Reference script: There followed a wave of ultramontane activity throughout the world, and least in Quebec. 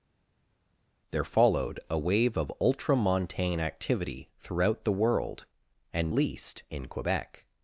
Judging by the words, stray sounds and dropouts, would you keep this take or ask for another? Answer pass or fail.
pass